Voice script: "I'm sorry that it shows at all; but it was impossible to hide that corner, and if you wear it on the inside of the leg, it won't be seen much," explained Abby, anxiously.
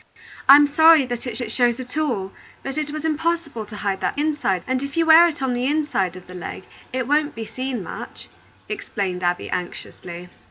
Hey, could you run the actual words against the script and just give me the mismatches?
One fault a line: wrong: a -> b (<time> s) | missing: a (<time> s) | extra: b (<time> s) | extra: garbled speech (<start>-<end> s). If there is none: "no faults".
extra: it (1.4 s)
wrong: corner -> inside (4.2 s)